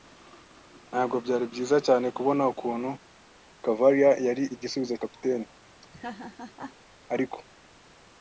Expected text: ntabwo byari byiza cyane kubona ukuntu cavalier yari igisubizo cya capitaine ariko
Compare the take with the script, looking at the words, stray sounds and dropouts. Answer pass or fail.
fail